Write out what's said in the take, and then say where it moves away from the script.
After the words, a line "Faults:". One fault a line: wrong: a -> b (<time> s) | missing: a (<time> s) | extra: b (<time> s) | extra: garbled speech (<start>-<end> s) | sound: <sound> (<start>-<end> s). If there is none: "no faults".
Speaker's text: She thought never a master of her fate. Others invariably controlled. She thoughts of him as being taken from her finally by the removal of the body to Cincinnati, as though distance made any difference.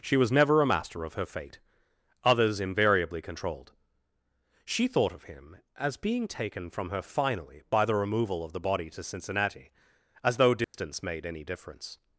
She was never a master of her fate. Others invariably controlled. She thought of him as being taken from her finally by the removal of the body to Cincinnati, as though distance made any difference.
Faults:
wrong: thought -> was (0.2 s)
wrong: thoughts -> thought (4.9 s)
sound: dropout (10.6-10.7 s)